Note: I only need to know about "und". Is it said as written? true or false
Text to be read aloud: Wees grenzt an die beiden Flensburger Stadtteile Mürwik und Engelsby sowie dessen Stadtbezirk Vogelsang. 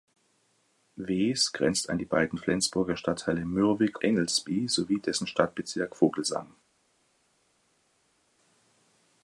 false